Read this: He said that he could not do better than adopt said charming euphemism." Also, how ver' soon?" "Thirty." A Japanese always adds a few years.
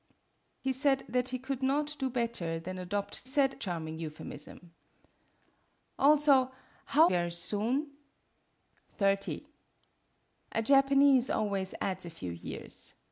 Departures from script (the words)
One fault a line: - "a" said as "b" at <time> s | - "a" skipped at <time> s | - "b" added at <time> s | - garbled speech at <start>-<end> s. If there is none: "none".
none